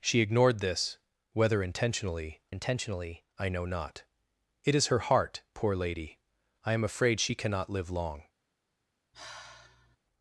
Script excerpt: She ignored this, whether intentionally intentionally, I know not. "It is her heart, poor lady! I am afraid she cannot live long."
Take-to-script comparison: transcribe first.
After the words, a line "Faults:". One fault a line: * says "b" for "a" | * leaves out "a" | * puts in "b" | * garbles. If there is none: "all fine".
She ignored this, whether intentionally intentionally, I know not. "It is her heart, poor lady! I am afraid she cannot live long."
Faults:
all fine